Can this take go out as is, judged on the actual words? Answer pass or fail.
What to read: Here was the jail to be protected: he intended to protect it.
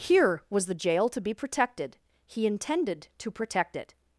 pass